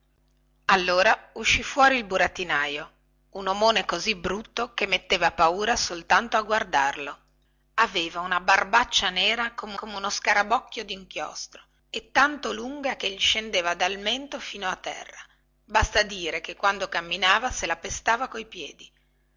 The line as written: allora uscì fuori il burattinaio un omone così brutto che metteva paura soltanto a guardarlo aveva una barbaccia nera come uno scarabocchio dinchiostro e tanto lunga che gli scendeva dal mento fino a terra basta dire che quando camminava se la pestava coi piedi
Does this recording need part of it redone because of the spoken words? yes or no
yes